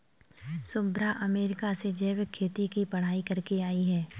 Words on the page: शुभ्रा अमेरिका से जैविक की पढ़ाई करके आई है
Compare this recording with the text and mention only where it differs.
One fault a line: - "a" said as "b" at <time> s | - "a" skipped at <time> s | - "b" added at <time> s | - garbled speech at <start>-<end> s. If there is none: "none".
- "खेती" added at 2.3 s